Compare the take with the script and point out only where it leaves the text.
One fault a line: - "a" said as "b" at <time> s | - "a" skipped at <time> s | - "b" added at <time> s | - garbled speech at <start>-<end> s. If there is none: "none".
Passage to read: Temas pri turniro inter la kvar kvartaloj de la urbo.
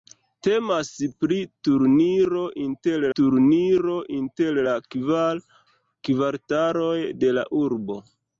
- "turniro inter" added at 3.2 s